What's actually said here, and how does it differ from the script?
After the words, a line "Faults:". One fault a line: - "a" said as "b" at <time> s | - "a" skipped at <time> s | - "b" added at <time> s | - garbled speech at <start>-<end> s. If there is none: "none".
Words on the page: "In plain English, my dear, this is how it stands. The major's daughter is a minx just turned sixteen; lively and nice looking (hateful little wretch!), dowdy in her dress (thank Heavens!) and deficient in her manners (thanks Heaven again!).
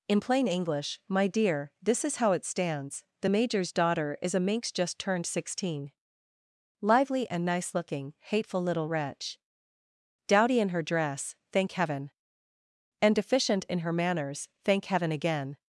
"In plain English, my dear, this is how it stands. The major's daughter is a minx just turned sixteen; lively and nice looking (hateful little wretch!), dowdy in her dress (thank Heaven!) and deficient in her manners (thank Heaven again!).
Faults:
- "Heavens" said as "Heaven" at 11.7 s
- "thanks" said as "thank" at 14.6 s